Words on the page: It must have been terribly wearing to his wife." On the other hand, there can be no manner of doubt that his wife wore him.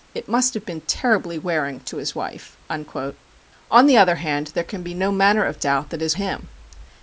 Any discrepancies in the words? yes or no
yes